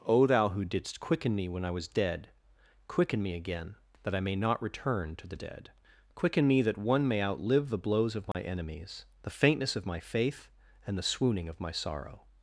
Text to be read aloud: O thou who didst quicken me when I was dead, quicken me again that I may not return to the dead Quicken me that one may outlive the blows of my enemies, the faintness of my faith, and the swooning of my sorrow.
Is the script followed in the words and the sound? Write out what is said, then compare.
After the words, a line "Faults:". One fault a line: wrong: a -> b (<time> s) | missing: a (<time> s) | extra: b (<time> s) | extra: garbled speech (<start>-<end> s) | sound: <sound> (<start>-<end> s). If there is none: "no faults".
O thou who didst quicken me when I was dead, quicken me again that I may not return to the dead Quicken me that one may outlive the blows of my enemies, the faintness of my faith, and the swooning of my sorrow.
Faults:
sound: dropout (8.3-8.3 s)